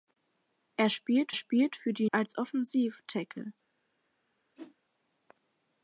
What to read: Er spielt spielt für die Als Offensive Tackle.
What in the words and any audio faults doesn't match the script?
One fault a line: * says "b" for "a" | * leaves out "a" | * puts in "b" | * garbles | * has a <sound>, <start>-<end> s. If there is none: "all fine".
* has a whoosh, 4.6-4.8 s